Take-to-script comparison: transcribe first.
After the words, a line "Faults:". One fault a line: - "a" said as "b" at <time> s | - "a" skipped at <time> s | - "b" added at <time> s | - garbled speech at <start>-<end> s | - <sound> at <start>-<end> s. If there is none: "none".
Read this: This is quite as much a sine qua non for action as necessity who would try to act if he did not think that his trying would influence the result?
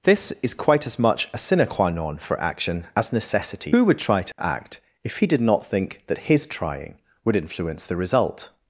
This is quite as much a sine qua non for action as necessity who would try to act if he did not think that his trying would influence the result?
Faults:
- dropout at 4.3-4.4 s